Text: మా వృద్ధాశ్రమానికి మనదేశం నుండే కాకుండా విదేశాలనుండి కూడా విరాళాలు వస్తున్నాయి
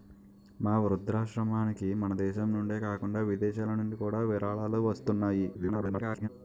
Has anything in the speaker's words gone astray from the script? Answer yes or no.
yes